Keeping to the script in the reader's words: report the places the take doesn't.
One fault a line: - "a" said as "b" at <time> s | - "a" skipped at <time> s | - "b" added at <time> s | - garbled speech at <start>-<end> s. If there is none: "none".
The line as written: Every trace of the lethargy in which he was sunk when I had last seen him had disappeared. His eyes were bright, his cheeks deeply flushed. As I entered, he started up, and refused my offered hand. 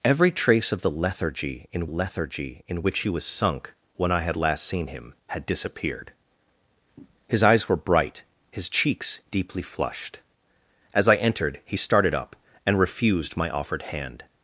- "lethargy in" added at 1.8 s